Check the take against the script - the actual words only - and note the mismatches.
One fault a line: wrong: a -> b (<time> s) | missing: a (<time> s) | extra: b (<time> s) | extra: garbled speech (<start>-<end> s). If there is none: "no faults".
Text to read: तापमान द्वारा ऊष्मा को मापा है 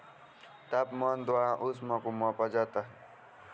extra: जाता (2.5 s)